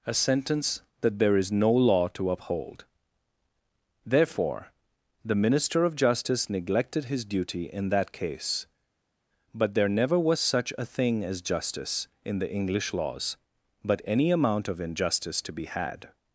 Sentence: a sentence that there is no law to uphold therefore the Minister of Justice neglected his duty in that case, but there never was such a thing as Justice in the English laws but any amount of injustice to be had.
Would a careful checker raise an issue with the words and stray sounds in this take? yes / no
no